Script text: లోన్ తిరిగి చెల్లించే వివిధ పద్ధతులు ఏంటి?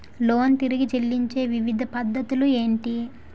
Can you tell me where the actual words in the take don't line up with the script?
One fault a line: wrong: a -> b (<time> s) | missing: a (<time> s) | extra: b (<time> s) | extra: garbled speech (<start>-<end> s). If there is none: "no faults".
no faults